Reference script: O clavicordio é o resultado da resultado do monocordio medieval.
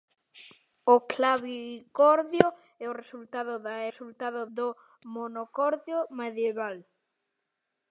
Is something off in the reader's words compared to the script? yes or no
no